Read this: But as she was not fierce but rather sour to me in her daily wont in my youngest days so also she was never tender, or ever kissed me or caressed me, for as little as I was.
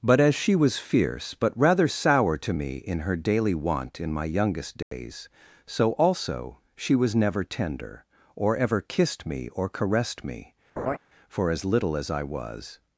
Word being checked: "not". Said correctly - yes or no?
no